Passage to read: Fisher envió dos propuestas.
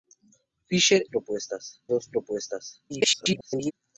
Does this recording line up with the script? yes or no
no